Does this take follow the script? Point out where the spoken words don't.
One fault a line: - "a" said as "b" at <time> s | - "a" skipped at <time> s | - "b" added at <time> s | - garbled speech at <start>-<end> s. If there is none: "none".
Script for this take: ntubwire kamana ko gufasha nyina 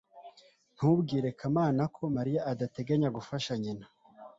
- "mariya adateganya" added at 2.2 s